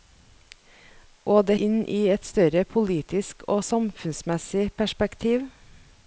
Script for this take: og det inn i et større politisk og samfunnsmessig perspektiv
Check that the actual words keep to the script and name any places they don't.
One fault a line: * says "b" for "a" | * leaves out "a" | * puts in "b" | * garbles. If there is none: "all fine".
all fine